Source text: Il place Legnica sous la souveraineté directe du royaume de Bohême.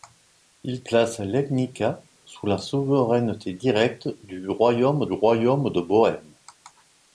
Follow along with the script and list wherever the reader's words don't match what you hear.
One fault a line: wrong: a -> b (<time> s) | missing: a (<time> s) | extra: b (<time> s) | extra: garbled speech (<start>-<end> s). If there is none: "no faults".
extra: royaume (5.1 s)